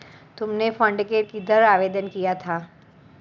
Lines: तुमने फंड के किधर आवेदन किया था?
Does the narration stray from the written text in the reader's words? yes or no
no